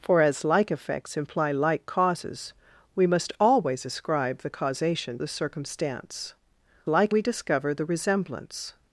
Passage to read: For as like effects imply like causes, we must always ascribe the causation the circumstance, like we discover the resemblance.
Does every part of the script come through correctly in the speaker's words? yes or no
yes